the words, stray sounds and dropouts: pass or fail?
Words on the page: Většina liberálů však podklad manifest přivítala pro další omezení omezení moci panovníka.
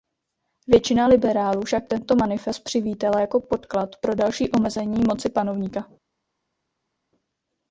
fail